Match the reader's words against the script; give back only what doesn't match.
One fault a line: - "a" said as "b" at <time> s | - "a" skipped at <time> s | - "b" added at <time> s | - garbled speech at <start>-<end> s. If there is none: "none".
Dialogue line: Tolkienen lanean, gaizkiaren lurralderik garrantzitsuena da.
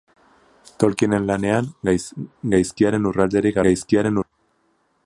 - "garrantzitsuena" said as "gaizkiaren" at 3.7 s